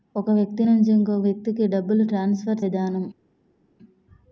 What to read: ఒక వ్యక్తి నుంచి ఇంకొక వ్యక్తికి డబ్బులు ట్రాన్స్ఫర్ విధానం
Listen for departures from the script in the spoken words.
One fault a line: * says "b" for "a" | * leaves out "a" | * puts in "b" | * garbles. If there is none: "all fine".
all fine